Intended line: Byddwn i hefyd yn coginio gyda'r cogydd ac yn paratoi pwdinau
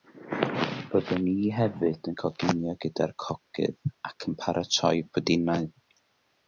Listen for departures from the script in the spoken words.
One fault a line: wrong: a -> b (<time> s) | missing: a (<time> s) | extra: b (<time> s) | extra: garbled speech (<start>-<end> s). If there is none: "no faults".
no faults